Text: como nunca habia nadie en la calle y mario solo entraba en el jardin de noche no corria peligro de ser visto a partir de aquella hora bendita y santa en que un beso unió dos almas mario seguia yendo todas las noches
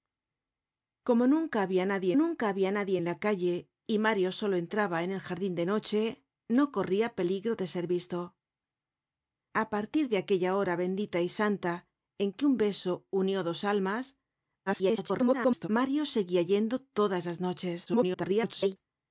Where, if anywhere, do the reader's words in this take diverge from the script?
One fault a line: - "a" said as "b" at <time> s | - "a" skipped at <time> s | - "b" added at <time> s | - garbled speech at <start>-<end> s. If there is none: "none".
- "nunca habia nadie" added at 2.2 s
- garbled speech at 14.7-15.7 s
- garbled speech at 17.9-18.8 s